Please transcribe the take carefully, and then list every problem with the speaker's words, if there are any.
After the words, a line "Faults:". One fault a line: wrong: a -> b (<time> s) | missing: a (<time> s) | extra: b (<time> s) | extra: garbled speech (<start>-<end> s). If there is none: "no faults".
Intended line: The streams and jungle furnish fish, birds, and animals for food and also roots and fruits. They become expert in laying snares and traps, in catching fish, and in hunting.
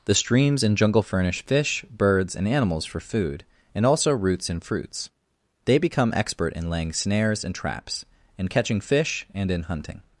The streams and jungle furnish fish, birds, and animals for food and also roots and fruits. They become expert in laying snares and traps, in catching fish, and in hunting.
Faults:
no faults